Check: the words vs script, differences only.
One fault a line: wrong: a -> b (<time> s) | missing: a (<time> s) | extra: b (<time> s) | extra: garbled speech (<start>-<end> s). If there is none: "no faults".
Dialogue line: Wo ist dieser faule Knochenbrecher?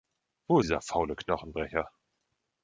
missing: ist (0.6 s)